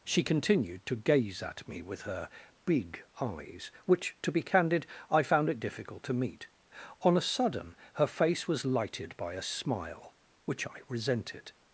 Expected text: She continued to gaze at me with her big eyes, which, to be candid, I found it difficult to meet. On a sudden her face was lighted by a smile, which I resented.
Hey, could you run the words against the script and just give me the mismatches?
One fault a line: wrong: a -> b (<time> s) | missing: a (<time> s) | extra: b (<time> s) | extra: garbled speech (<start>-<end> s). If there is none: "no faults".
no faults